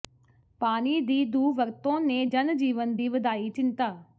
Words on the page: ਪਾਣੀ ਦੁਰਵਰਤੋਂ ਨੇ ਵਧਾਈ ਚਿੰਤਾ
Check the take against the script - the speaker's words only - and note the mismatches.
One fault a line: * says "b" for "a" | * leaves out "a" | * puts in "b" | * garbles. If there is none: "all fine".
* puts in "ਦੀ"
* puts in "ਜਨ ਜੀਵਨ ਦੀ"